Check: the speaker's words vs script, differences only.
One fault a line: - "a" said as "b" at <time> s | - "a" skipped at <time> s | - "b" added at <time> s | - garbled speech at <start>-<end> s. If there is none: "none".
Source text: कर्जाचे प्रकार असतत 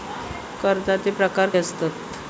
none